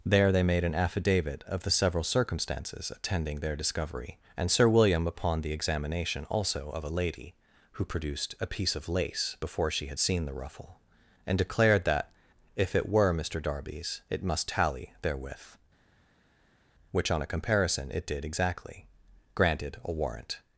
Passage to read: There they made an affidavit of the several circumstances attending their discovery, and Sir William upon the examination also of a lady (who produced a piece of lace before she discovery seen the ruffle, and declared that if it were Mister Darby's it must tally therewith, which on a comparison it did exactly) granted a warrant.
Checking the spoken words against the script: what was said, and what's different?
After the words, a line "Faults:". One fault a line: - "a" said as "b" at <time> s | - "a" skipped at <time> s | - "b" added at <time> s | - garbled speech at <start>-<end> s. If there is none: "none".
There they made an affidavit of the several circumstances attending their discovery, and Sir William upon the examination also of a lady (who produced a piece of lace before she had seen the ruffle, and declared that if it were Mister Darby's it must tally therewith, which on a comparison it did exactly) granted a warrant.
Faults:
- "discovery" said as "had" at 9.8 s